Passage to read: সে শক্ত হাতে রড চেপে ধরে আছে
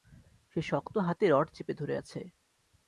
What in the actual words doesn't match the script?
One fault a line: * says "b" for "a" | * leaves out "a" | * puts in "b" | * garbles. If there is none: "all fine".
all fine